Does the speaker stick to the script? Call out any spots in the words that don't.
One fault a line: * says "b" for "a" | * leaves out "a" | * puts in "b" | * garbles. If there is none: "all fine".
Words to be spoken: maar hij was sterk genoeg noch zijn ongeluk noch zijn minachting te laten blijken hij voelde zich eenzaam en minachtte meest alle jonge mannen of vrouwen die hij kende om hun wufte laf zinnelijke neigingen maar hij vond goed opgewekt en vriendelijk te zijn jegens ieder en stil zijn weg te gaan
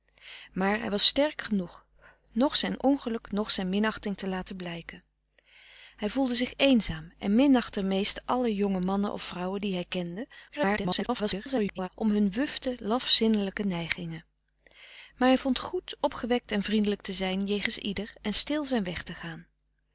* garbles